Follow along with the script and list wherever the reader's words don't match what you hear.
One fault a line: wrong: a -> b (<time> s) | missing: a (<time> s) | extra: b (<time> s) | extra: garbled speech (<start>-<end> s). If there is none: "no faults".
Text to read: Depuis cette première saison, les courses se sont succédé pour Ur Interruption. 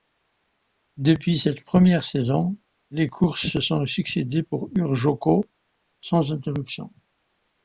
extra: Joko sans (5.0 s)